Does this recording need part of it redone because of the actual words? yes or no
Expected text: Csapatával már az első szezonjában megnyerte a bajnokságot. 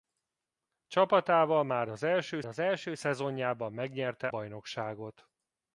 yes